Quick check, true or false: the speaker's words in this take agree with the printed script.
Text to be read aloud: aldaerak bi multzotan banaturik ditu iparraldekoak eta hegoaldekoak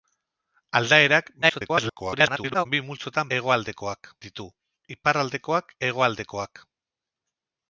false